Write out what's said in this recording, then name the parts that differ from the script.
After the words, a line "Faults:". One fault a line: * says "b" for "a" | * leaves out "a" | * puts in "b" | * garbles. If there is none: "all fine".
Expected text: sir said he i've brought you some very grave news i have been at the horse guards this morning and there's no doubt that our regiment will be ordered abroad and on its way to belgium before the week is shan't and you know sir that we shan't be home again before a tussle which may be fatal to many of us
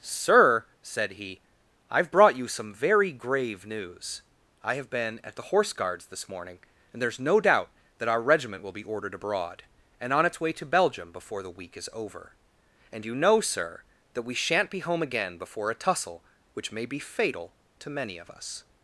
sir said he i've brought you some very grave news i have been at the horse guards this morning and there's no doubt that our regiment will be ordered abroad and on its way to belgium before the week is over and you know sir that we shan't be home again before a tussle which may be fatal to many of us
Faults:
* says "over" for "shan't"